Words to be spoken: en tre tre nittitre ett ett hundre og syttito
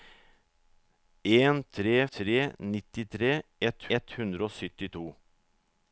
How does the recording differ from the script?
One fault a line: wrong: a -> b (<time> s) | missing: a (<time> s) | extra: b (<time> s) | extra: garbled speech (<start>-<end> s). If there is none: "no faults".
no faults